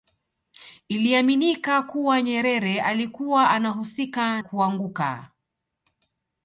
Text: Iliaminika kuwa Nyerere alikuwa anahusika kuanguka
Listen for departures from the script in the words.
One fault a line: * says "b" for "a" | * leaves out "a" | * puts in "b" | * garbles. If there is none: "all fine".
all fine